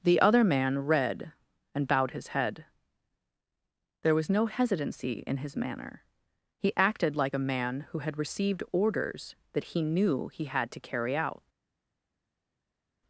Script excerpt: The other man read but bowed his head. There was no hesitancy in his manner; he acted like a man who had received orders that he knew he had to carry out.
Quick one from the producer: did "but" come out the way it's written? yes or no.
no